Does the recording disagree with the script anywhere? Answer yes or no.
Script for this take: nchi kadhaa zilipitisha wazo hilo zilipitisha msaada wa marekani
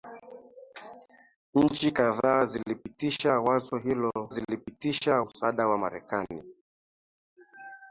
no